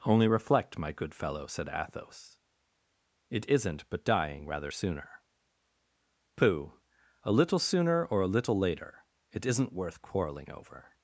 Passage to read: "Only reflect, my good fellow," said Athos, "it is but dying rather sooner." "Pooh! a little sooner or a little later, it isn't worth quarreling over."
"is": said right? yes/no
no